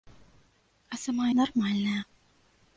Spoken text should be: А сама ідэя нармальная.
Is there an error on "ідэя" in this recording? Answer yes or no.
yes